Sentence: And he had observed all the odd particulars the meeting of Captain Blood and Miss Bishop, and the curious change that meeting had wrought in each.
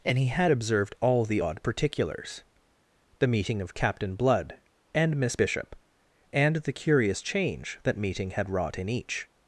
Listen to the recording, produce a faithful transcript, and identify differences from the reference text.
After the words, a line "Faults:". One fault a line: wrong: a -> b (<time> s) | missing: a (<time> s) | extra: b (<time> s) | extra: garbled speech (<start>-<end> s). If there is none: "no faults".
And he had observed all the odd particulars the meeting of Captain Blood and Miss Bishop, and the curious change that meeting had wrought in each.
Faults:
no faults